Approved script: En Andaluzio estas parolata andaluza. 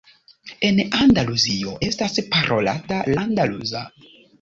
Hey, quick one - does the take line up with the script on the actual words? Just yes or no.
yes